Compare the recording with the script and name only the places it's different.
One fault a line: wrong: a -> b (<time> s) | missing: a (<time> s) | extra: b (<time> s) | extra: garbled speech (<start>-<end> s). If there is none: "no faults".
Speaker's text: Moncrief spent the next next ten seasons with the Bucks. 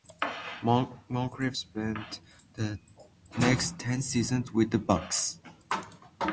missing: next (3.8 s)